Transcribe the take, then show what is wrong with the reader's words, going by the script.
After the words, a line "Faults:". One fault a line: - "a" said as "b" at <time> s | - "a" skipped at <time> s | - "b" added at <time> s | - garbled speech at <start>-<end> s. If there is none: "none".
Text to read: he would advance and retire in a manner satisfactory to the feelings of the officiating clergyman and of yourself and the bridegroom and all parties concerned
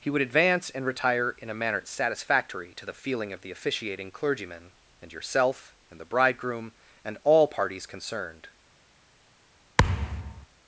he would advance and retire in a manner satisfactory to the feeling of the officiating clergyman and yourself and the bridegroom and all parties concerned
Faults:
- "feelings" said as "feeling" at 2.9 s
- "of" skipped at 5.1 s